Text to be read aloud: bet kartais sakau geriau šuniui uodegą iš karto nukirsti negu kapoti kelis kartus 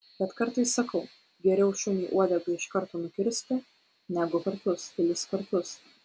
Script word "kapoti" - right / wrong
wrong